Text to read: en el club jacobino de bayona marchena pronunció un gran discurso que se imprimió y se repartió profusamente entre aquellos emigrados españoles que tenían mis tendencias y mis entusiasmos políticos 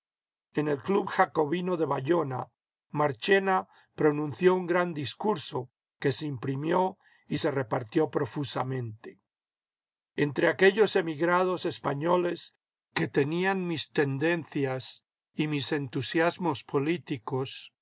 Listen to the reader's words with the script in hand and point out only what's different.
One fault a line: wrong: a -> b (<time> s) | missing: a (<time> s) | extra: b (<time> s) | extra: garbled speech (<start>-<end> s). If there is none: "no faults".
no faults